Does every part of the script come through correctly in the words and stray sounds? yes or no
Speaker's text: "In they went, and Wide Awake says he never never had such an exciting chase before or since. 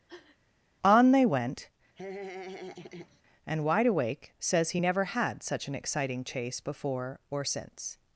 no